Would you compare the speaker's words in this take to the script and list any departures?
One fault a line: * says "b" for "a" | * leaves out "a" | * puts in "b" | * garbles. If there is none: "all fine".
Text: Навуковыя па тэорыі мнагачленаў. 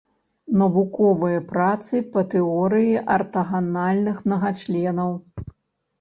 * puts in "працы"
* puts in "артаганальных"